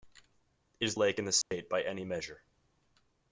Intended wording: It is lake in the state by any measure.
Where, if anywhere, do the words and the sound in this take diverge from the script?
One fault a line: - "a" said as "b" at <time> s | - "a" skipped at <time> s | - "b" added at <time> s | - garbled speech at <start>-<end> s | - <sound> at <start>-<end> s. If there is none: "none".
- dropout at 1.4-1.5 s